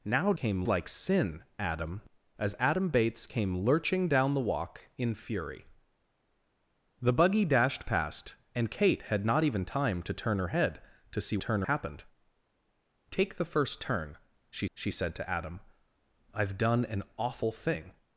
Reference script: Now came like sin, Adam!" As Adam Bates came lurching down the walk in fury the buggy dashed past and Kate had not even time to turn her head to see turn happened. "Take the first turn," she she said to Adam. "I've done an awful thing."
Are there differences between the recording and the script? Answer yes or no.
no